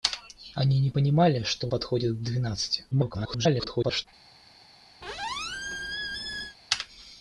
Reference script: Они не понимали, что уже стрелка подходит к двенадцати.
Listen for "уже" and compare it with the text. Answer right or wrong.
wrong